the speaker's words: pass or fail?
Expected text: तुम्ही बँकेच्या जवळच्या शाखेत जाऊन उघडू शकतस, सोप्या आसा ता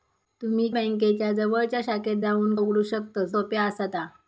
pass